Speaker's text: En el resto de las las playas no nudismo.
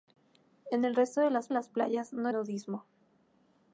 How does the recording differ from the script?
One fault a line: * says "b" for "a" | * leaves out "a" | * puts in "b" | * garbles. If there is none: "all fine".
all fine